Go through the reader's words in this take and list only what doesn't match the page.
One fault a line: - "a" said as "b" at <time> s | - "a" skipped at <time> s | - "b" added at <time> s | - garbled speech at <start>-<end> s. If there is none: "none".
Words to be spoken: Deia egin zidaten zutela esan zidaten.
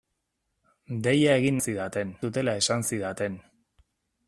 none